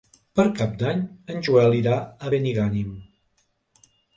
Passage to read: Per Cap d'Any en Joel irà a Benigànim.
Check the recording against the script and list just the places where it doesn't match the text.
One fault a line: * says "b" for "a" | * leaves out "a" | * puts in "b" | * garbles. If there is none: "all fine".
all fine